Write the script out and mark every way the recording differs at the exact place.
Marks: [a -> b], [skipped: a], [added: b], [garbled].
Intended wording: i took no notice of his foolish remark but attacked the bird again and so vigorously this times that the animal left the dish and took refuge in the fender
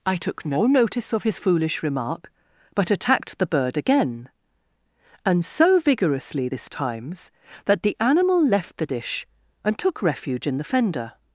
i took no notice of his foolish remark but attacked the bird again and so vigorously this times that the animal left the dish and took refuge in the fender